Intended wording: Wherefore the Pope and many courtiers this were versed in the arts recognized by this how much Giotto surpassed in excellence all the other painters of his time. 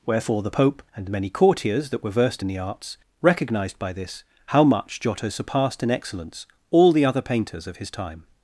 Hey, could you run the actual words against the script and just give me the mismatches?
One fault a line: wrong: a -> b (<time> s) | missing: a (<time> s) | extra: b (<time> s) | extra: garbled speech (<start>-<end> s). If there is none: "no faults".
wrong: this -> that (1.9 s)